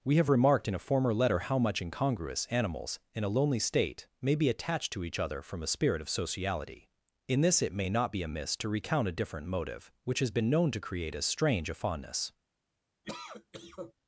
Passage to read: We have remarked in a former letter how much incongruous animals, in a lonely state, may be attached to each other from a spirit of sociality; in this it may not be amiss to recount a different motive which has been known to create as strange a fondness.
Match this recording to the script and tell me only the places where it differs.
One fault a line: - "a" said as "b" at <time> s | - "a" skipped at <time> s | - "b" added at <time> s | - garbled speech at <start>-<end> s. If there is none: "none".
none